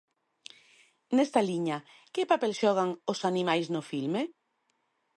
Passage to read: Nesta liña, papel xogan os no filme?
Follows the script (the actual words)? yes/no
no